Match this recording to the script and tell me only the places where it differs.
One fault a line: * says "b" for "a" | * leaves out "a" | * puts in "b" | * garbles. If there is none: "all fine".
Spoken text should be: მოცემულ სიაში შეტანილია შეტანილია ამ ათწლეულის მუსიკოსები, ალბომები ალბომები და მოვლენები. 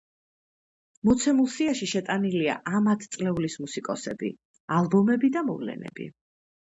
* leaves out "შეტანილია"
* leaves out "ალბომები"